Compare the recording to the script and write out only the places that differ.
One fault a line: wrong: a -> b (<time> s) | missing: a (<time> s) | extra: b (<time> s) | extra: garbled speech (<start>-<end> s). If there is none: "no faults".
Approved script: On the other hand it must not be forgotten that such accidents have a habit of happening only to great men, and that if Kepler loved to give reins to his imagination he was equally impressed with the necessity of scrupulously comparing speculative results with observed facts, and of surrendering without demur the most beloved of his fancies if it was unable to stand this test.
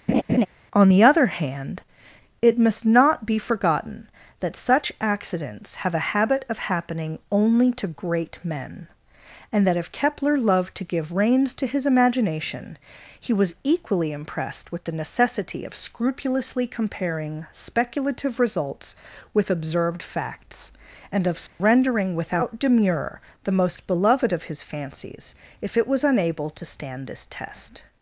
no faults